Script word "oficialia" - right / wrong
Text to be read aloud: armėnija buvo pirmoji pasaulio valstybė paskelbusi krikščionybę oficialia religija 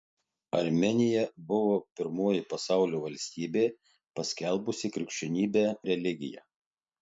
wrong